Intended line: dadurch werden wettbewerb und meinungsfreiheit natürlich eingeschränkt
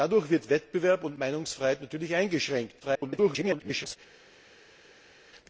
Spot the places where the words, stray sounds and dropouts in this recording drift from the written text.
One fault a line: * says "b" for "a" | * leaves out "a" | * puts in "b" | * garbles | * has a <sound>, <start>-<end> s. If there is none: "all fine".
* garbles